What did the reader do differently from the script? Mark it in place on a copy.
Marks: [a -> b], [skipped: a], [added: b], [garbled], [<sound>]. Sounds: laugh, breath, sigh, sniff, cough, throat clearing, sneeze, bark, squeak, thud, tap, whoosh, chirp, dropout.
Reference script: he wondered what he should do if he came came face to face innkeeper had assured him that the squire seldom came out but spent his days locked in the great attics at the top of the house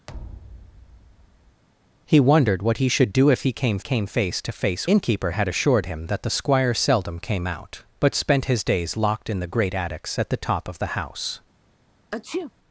[thud] he wondered what he should do if he came came face to face innkeeper had assured him that the squire seldom came out but spent his days locked in the great attics at the top of the house [sneeze]